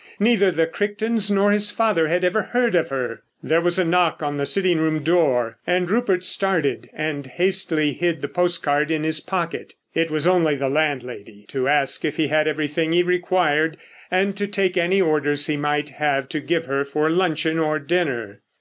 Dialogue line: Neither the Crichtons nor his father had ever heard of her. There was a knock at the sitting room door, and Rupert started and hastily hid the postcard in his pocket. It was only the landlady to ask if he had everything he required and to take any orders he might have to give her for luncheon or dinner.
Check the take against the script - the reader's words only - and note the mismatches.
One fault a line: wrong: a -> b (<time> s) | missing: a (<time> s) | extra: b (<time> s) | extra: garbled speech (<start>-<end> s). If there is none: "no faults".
wrong: at -> on (4.2 s)